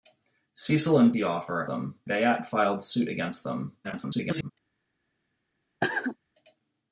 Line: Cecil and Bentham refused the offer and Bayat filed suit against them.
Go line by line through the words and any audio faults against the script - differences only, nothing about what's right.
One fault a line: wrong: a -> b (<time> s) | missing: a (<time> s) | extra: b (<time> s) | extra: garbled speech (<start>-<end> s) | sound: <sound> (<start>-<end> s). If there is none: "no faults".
missing: Bentham refused (1.1 s)
wrong: and -> them (1.7 s)
extra: garbled speech (3.8-4.5 s)
sound: cough (5.8-6.2 s)